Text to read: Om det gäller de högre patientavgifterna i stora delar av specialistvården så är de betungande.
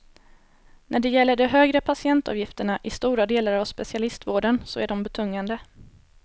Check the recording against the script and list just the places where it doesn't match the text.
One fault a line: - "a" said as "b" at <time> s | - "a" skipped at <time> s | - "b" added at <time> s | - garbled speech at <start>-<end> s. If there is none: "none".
- "Om" said as "När" at 0.9 s